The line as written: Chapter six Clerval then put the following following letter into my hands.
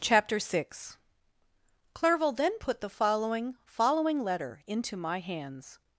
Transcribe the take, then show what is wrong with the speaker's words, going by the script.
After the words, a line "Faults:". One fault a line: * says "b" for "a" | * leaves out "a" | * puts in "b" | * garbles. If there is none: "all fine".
Chapter six Clerval then put the following following letter into my hands.
Faults:
all fine